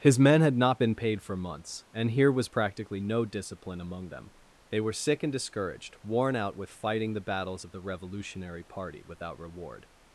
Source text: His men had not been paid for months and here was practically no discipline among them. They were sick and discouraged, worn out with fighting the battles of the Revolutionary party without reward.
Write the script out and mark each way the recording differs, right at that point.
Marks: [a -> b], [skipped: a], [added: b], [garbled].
His men had not been paid for months and here was practically no discipline among them. They were sick and discouraged, worn out with fighting the battles of the Revolutionary party without reward.